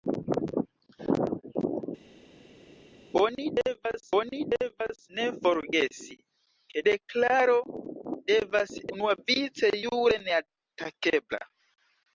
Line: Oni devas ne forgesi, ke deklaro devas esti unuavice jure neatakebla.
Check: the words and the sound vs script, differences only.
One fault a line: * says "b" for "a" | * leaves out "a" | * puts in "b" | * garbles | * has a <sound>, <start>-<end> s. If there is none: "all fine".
* puts in "oni devas"
* leaves out "esti"